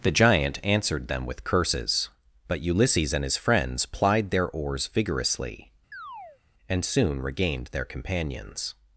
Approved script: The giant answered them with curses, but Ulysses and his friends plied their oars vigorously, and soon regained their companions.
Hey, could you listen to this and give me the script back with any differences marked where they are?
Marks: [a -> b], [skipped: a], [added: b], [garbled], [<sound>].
The giant answered them with curses, but Ulysses and his friends plied their oars vigorously, [chirp] and soon regained their companions.